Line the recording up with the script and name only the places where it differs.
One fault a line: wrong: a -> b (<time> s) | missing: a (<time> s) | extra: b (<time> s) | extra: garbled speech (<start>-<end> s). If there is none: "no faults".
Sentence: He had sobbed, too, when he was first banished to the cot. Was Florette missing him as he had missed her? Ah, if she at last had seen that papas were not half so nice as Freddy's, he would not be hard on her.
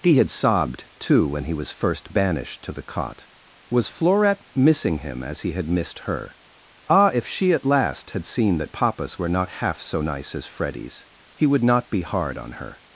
no faults